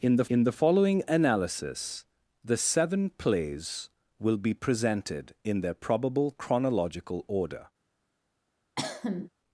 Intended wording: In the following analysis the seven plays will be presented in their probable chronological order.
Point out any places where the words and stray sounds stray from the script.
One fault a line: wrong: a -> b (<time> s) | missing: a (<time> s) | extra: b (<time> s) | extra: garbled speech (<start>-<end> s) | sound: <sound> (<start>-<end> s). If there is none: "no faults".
extra: in the (0.3 s)
sound: cough (8.8-9.3 s)